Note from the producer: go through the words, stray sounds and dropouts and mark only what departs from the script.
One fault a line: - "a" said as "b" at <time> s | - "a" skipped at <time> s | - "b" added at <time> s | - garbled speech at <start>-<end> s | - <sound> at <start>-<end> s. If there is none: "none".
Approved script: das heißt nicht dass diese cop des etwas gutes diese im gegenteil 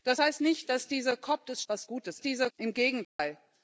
- dropout at 3.0-3.2 s